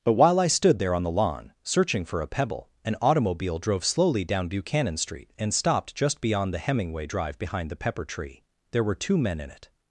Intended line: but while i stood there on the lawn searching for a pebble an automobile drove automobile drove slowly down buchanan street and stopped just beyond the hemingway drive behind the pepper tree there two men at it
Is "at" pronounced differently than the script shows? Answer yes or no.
yes